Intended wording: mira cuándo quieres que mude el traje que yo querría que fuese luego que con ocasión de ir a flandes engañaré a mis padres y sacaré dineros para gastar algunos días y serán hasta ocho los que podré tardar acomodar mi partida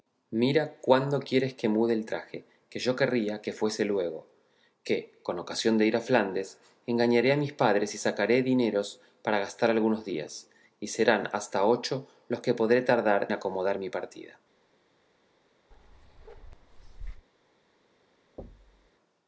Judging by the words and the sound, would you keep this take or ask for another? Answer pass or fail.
fail